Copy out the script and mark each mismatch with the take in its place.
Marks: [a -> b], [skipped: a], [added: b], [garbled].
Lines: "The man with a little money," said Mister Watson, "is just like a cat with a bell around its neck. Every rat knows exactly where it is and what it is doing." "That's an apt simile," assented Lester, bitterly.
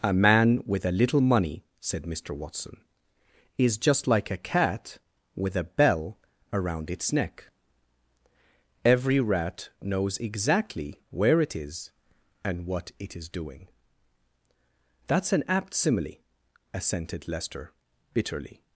["The -> A] man with a little money," said Mister Watson, "is just like a cat with a bell around its neck. Every rat knows exactly where it is and what it is doing." "That's an apt simile," assented Lester, bitterly.